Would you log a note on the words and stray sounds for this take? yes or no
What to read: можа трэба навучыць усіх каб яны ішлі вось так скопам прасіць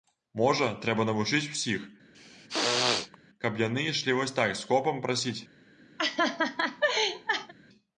yes